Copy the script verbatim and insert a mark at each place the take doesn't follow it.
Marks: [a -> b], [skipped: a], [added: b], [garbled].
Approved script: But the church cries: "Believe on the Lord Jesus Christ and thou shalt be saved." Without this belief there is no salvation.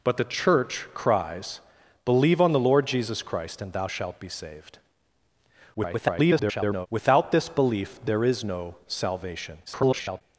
But the church cries: "Believe on the Lord Jesus Christ and thou shalt be saved." [garbled] Without this belief there is no salvation. [garbled]